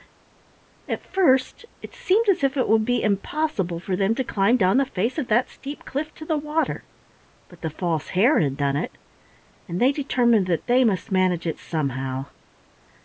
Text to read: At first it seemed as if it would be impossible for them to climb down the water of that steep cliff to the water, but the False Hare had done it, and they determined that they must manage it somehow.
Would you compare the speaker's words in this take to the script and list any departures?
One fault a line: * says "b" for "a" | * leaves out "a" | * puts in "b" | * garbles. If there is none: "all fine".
* says "face" for "water"